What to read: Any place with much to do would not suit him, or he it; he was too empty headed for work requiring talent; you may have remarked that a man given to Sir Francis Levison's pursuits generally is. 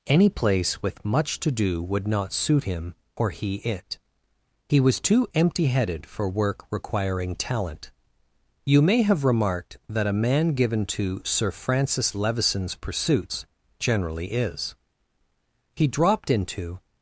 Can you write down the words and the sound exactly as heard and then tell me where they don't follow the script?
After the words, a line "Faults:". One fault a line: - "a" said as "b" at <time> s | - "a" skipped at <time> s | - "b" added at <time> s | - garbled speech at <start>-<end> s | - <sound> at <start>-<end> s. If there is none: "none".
Any place with much to do would not suit him, or he it; he was too empty headed for work requiring talent; you may have remarked that a man given to Sir Francis Levison's pursuits generally is. He dropped into
Faults:
- "He dropped into" added at 15.7 s